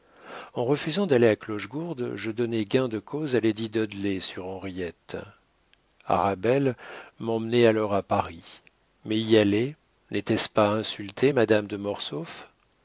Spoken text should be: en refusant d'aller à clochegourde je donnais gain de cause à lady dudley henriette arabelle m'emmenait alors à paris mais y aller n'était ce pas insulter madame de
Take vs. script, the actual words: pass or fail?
fail